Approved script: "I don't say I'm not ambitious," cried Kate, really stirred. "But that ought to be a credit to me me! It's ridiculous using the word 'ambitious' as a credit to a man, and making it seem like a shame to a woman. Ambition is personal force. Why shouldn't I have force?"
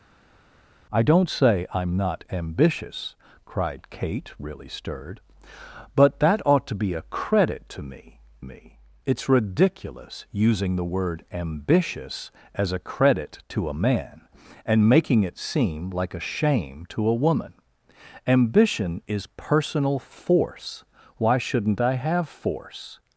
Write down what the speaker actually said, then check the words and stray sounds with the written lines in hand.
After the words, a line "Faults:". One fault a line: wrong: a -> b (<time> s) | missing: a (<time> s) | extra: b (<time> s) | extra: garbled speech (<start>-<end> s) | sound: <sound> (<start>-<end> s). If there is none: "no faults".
"I don't say I'm not ambitious," cried Kate, really stirred. "But that ought to be a credit to me me! It's ridiculous using the word 'ambitious' as a credit to a man, and making it seem like a shame to a woman. Ambition is personal force. Why shouldn't I have force?"
Faults:
no faults